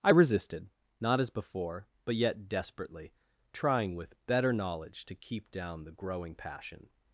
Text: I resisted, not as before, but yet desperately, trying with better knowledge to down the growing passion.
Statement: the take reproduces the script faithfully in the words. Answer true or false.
false